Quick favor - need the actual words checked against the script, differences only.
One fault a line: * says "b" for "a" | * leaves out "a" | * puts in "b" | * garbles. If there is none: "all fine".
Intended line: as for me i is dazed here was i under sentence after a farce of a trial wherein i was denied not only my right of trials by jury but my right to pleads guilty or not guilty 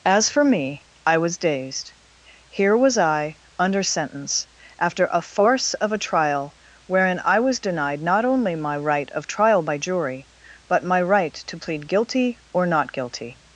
* says "was" for "is"
* says "trial" for "trials"
* says "plead" for "pleads"